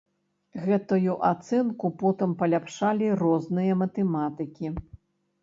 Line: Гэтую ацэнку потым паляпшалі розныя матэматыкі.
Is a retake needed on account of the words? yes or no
no